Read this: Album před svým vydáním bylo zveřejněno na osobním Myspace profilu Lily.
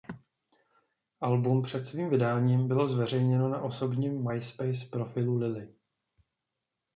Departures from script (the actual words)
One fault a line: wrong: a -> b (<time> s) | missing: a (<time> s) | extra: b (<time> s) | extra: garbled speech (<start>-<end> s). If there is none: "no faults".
no faults